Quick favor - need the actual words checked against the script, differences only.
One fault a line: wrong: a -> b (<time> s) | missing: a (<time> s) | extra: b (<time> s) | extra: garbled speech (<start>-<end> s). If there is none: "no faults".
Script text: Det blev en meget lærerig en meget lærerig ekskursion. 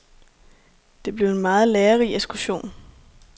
missing: en meget lærerig (2.1 s)